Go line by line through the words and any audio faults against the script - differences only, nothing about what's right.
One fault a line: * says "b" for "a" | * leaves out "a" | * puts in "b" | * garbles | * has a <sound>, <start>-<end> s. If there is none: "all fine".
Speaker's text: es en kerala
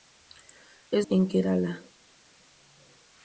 all fine